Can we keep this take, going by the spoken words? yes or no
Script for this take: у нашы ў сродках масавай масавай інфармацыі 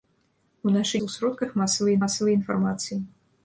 yes